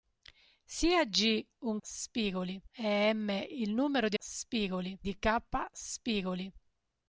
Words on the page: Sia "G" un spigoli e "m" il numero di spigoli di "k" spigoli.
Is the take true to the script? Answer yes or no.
yes